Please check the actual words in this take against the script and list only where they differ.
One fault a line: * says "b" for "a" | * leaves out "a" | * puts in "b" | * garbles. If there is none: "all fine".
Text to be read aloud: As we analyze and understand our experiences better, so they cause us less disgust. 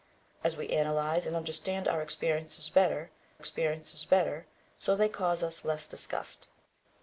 * puts in "experiences better"